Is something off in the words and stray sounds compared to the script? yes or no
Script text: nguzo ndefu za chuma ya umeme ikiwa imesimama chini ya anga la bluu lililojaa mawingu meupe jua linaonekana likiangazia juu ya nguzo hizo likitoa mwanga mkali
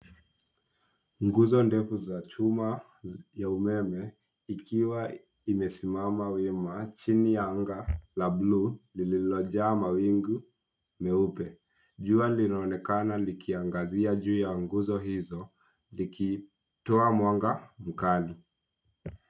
yes